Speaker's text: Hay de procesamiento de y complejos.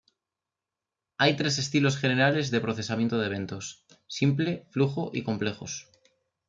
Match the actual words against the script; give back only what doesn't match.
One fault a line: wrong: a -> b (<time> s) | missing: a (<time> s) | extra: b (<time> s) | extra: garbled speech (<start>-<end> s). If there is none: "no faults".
extra: tres estilos generales (1.4 s)
extra: eventos simple flujo (3.3 s)